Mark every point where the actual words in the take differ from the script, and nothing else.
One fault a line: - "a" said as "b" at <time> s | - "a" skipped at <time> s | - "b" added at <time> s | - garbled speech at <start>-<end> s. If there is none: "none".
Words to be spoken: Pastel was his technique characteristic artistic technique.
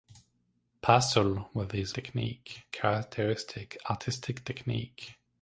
none